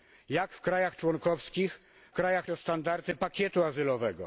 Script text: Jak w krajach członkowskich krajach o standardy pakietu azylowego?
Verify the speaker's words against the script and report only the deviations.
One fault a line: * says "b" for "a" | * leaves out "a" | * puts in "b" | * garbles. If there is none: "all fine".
all fine